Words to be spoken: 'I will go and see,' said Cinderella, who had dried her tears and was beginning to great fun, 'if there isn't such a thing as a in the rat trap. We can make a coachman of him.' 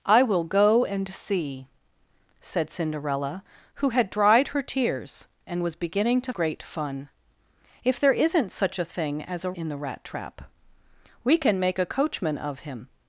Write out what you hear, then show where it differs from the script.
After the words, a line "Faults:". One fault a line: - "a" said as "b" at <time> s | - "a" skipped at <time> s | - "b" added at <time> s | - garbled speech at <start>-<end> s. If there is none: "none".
'I will go and see,' said Cinderella, who had dried her tears and was beginning to great fun, 'if there isn't such a thing as a in the rat trap. We can make a coachman of him.'
Faults:
none